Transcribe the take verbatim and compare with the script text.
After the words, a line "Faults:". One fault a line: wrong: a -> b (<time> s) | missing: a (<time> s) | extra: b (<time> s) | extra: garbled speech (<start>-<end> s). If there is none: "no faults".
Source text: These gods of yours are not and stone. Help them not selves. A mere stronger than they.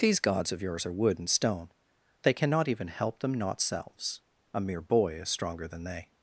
These gods of yours are wood and stone. They cannot even help them not selves. A mere boy is stronger than they.
Faults:
wrong: not -> wood (0.9 s)
extra: They cannot even (2.2 s)
extra: boy is (4.8 s)